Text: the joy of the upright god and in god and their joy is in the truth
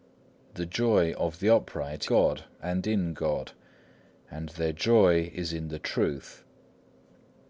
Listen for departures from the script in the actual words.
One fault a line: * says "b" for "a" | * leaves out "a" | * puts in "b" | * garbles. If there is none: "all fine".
all fine